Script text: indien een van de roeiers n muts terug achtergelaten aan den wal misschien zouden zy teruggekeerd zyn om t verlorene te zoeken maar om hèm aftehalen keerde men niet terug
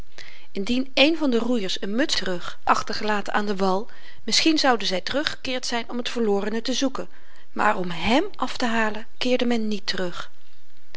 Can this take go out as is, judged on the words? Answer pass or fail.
pass